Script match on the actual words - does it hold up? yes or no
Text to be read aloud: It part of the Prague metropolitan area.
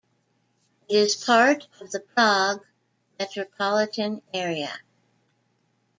no